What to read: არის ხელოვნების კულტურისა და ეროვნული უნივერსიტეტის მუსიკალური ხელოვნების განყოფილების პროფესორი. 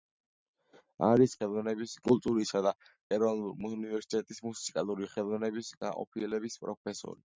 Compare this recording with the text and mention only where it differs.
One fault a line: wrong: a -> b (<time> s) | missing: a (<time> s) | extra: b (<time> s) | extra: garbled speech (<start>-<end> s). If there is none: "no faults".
no faults